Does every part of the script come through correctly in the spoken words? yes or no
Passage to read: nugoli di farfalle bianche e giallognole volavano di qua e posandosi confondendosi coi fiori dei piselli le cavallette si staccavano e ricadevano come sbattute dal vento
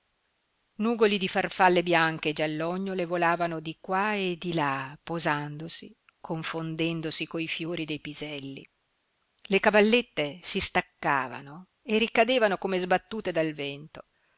no